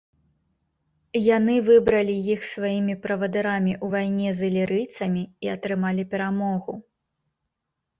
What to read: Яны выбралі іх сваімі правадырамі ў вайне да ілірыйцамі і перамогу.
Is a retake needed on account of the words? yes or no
yes